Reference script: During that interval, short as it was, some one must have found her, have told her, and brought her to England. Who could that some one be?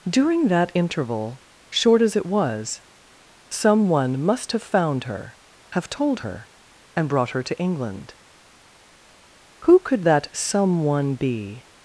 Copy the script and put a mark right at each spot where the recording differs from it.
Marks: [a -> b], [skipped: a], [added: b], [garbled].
During that interval, short as it was, some one must have found her, have told her, and brought her to England. Who could that some one be?